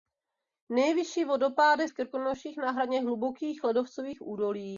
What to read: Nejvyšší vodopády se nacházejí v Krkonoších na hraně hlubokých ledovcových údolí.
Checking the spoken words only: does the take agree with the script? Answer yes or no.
no